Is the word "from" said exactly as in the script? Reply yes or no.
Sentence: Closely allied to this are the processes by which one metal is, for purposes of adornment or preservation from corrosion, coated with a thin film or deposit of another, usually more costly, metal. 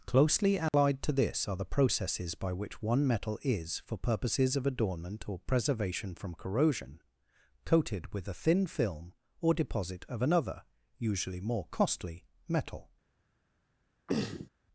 yes